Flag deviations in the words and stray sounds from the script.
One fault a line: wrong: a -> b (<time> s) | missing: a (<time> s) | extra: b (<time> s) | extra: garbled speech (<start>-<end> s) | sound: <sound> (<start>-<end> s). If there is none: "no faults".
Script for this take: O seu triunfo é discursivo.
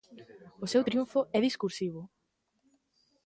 no faults